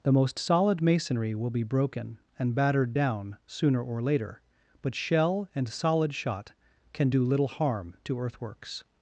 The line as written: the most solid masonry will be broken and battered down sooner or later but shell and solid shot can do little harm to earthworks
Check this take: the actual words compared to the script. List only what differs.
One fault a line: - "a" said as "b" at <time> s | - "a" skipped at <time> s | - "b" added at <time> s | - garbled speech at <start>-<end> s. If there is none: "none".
none